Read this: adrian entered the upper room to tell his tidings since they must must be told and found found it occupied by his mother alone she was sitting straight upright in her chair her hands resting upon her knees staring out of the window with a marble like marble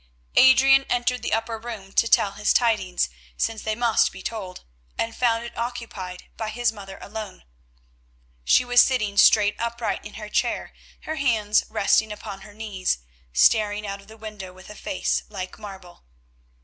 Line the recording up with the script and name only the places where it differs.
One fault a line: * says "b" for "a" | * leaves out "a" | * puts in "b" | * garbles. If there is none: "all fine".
* leaves out "must"
* leaves out "found"
* says "face" for "marble"